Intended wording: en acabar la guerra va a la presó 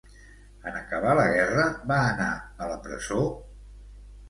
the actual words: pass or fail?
fail